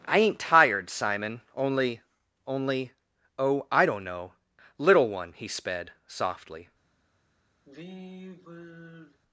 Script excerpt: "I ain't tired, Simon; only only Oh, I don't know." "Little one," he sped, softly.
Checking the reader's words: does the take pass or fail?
pass